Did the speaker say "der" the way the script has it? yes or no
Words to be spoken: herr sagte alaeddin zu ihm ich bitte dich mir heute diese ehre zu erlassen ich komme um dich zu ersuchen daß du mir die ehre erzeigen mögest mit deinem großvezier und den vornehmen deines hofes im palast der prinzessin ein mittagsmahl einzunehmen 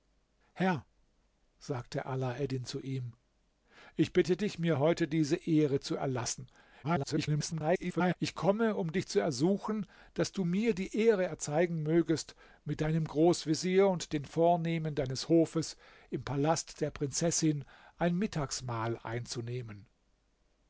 yes